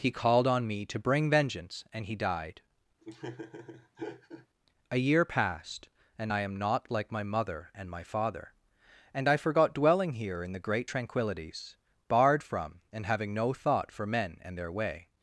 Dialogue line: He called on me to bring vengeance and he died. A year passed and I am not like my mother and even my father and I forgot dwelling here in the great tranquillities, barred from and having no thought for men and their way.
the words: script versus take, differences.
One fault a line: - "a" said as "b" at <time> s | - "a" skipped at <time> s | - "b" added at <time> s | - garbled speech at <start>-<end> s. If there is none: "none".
- "even" skipped at 7.9 s